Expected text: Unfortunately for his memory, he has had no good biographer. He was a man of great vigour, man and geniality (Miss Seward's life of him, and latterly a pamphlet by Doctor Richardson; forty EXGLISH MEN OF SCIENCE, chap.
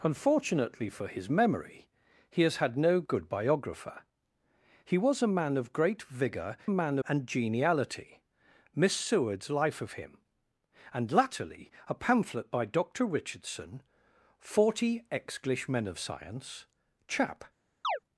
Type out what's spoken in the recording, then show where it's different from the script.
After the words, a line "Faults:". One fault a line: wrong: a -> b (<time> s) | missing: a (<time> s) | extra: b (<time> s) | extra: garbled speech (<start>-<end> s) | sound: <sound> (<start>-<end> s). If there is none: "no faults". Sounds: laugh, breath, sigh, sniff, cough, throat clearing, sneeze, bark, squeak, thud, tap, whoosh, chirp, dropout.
Unfortunately for his memory, he has had no good biographer. He was a man of great vigour, man and geniality (Miss Seward's life of him, and latterly a pamphlet by Doctor Richardson; forty EXGLISH MEN OF SCIENCE, chap.
Faults:
sound: chirp (17.8-18.0 s)